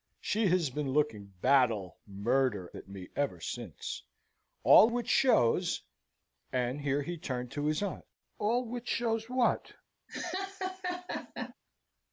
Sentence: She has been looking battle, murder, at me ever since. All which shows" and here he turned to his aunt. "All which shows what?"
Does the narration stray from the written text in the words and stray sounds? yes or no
yes